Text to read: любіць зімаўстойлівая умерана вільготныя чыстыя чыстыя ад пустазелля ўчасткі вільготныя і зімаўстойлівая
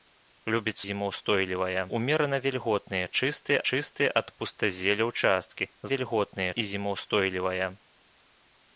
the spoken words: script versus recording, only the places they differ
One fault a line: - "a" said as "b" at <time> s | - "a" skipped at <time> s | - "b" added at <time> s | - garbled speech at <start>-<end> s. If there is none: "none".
none